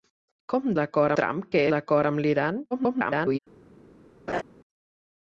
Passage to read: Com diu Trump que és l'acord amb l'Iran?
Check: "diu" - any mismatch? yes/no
yes